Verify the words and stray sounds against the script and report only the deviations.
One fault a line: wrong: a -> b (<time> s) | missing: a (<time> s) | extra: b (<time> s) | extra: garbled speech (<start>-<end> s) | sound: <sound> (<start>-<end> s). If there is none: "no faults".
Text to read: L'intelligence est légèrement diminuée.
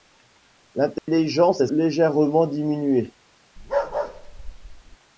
sound: dropout (1.0-1.1 s)
sound: bark (3.6-5.0 s)